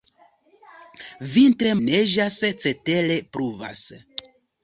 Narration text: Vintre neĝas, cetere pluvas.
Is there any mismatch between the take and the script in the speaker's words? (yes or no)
no